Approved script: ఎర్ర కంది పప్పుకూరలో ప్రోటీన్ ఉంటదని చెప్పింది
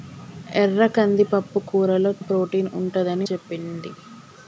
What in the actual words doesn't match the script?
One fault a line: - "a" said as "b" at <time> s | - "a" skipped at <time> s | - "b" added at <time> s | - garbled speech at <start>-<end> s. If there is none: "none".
none